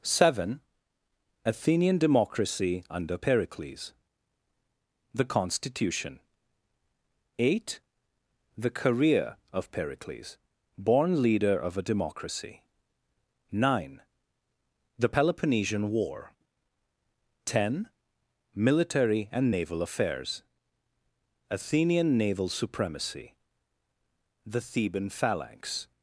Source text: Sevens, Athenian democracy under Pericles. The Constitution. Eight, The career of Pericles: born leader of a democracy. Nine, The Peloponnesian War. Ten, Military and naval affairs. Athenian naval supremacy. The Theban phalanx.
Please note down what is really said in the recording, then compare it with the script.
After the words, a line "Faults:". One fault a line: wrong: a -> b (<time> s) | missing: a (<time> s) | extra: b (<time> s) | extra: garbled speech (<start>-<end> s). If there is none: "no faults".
Seven, Athenian democracy under Pericles. The Constitution. Eight, The career of Pericles: born leader of a democracy. Nine, The Peloponnesian War. Ten, Military and naval affairs. Athenian naval supremacy. The Theban phalanx.
Faults:
wrong: Sevens -> Seven (0.0 s)